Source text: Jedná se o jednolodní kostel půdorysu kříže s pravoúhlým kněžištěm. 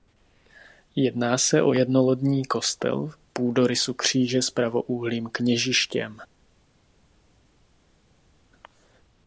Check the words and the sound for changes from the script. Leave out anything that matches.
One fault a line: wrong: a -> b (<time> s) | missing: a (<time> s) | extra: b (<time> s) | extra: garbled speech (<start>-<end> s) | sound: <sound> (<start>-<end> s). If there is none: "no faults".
no faults